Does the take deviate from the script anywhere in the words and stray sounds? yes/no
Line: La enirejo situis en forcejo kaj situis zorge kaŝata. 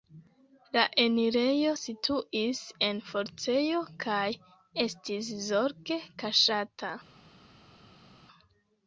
yes